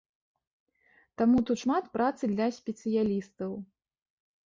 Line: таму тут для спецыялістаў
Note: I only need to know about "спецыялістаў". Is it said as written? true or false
true